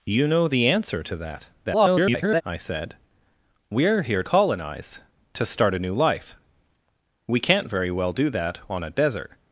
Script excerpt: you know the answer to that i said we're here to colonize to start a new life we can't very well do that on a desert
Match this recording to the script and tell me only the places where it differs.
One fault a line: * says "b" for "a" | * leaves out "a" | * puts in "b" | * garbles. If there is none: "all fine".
* garbles
* leaves out "to"